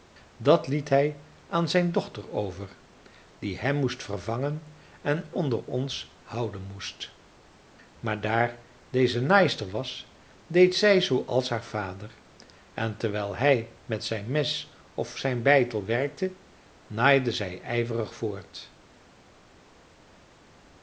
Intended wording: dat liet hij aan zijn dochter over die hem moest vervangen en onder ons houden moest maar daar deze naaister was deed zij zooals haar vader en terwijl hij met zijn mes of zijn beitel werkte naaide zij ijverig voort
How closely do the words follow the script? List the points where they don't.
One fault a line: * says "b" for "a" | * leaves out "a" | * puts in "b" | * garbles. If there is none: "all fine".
all fine